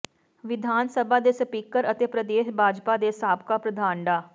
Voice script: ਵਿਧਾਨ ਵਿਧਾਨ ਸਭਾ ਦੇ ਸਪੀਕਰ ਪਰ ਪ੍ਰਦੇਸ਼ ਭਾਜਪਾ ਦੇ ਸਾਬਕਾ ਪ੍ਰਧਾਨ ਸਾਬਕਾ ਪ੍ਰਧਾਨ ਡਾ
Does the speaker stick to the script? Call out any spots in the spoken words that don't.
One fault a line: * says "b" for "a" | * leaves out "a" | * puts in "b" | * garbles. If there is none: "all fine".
* leaves out "ਵਿਧਾਨ"
* says "ਅਤੇ" for "ਪਰ"
* leaves out "ਸਾਬਕਾ ਪ੍ਰਧਾਨ"